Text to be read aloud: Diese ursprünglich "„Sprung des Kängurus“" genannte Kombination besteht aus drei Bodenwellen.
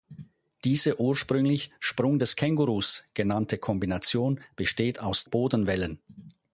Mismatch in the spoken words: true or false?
true